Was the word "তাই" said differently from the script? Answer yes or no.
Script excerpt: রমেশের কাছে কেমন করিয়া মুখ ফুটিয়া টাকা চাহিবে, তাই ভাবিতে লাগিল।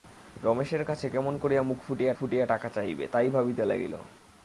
no